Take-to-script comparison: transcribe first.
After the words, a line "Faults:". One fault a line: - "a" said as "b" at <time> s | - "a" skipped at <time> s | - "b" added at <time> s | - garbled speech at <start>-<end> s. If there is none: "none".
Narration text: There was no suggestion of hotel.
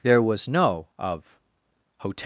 There was no of hotel.
Faults:
- "suggestion" skipped at 0.9 s